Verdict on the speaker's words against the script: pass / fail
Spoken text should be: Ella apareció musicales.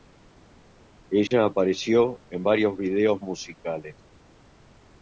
fail